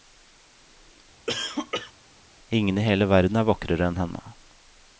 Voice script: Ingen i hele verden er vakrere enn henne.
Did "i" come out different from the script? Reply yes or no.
no